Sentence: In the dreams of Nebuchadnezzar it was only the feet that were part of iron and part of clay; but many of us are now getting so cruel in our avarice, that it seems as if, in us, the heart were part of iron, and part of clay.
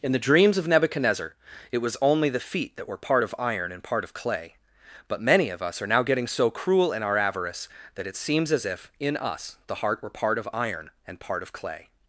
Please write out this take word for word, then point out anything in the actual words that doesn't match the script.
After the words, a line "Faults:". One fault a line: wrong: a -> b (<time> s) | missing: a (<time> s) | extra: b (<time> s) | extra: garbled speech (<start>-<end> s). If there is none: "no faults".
In the dreams of Nebuchadnezzar it was only the feet that were part of iron and part of clay; but many of us are now getting so cruel in our avarice, that it seems as if, in us, the heart were part of iron, and part of clay.
Faults:
no faults